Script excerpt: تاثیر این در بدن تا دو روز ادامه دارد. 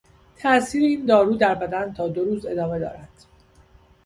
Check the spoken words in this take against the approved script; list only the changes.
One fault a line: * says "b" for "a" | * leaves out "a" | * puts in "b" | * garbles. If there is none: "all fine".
* puts in "دارو"